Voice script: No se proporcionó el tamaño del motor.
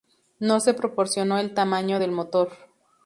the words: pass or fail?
pass